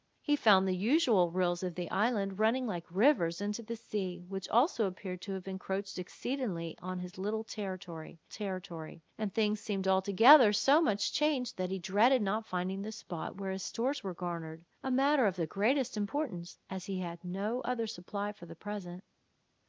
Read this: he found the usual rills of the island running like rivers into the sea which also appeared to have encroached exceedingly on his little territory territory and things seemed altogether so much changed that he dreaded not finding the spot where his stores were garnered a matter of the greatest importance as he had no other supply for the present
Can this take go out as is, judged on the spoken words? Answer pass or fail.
pass